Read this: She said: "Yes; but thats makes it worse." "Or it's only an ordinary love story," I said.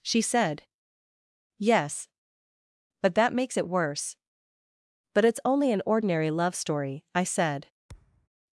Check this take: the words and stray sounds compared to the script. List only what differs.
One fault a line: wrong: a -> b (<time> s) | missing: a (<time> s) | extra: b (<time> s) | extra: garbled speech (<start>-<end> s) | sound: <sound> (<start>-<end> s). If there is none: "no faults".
wrong: thats -> that (3.2 s)
wrong: Or -> But (5.1 s)
sound: thud (7.9-8.3 s)